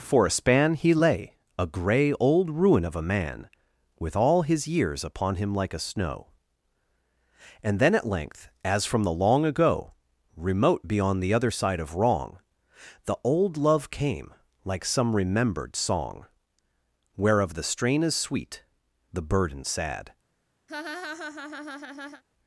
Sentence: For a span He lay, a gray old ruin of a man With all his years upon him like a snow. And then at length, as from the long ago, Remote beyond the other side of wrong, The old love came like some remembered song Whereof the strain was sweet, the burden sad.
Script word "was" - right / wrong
wrong